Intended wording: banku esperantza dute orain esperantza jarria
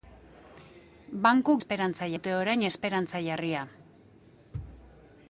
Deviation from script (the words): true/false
false